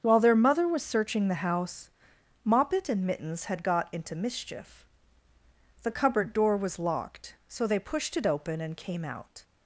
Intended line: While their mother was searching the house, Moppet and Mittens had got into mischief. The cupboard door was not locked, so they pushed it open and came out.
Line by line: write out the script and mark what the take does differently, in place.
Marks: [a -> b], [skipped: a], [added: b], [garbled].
While their mother was searching the house, Moppet and Mittens had got into mischief. The cupboard door was [skipped: not] locked, so they pushed it open and came out.